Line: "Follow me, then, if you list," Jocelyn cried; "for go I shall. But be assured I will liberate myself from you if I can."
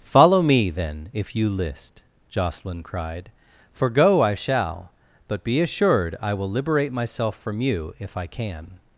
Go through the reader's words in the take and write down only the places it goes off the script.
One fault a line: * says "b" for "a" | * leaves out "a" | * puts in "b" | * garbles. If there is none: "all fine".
all fine